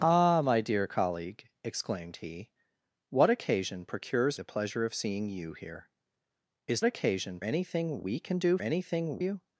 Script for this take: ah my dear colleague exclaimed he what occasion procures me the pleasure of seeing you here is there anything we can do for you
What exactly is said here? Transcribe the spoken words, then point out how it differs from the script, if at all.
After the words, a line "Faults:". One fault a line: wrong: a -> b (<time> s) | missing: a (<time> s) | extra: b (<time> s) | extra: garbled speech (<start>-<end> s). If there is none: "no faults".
ah my dear colleague exclaimed he what occasion procures the pleasure of seeing you here is occasion anything we can do anything you
Faults:
missing: me (4.4 s)
wrong: there -> occasion (6.8 s)
wrong: for -> anything (8.6 s)